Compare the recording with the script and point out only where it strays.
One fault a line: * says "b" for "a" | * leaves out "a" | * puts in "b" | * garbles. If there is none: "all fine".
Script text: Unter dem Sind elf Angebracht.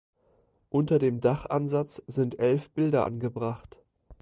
* puts in "Dachansatz"
* puts in "Bilder"